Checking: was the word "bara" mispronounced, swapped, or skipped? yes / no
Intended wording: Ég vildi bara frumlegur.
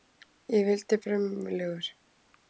yes